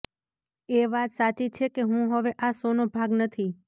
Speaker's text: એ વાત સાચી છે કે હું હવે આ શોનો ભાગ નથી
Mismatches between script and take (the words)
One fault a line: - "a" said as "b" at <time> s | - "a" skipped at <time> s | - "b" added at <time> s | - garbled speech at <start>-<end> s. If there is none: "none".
none